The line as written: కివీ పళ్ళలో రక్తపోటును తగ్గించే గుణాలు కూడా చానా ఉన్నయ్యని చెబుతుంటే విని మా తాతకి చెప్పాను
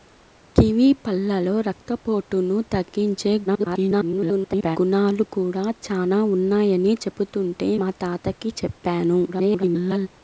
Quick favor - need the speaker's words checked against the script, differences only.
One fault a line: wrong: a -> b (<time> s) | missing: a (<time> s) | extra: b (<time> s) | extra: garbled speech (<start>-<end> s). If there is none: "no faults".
extra: garbled speech (3.5-4.8 s)
missing: విని (7.7 s)
extra: garbled speech (9.3-10.1 s)